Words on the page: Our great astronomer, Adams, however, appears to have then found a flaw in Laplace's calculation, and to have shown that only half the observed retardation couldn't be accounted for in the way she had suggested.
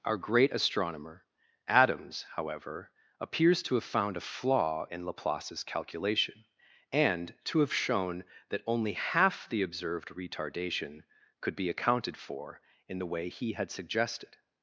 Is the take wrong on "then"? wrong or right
wrong